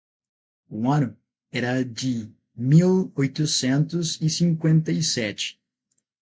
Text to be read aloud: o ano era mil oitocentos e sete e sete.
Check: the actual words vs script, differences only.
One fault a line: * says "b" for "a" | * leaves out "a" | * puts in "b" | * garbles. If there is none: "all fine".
* puts in "de"
* says "cinquenta" for "sete"